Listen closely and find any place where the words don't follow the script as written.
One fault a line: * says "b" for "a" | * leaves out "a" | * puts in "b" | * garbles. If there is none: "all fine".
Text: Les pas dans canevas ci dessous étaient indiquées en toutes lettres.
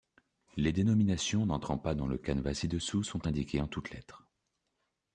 * puts in "dénominations n'entrant"
* puts in "le"
* says "sont" for "étaient"